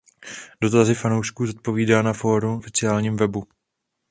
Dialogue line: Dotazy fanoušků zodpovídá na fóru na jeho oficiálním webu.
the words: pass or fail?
fail